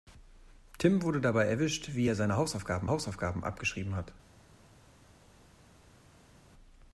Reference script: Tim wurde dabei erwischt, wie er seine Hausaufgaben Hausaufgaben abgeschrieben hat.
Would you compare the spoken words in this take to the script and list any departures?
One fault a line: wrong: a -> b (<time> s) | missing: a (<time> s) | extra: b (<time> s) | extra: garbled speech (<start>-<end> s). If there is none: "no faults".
no faults